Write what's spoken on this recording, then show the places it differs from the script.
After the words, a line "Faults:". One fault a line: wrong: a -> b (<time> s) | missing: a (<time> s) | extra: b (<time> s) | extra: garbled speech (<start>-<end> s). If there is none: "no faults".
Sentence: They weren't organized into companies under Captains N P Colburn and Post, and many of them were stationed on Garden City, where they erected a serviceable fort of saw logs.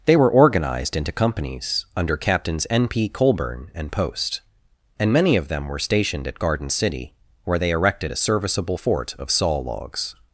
They were organized into companies under Captains N P Colburn and Post, and many of them were stationed at Garden City, where they erected a serviceable fort of saw logs.
Faults:
wrong: weren't -> were (0.1 s)
wrong: on -> at (6.3 s)